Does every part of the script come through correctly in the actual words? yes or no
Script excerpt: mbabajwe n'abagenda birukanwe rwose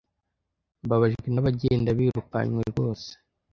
yes